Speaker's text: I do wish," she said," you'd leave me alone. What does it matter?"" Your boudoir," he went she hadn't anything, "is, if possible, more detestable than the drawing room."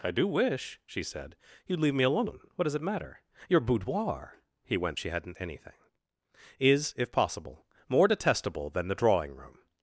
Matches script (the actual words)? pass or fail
pass